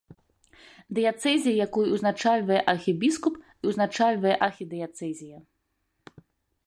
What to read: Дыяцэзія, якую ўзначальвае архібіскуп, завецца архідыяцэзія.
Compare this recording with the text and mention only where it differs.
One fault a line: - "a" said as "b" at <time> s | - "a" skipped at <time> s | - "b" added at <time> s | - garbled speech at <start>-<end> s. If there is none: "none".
- "завецца" said as "ўзначальвае" at 3.7 s